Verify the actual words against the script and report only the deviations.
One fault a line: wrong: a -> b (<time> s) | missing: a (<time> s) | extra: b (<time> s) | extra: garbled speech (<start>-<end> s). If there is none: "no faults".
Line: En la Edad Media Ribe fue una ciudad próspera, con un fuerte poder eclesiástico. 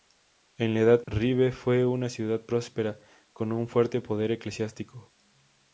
missing: Media (1.0 s)